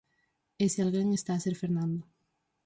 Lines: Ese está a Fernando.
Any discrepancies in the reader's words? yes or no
yes